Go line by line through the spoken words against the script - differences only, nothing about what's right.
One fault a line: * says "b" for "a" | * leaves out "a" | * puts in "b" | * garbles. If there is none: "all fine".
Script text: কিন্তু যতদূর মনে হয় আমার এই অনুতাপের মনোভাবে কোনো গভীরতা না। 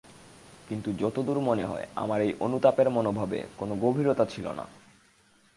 * puts in "ছিল"